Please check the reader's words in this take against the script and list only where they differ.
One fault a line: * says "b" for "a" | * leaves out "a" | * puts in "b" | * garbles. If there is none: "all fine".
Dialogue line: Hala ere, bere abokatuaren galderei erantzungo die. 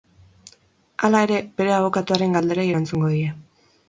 all fine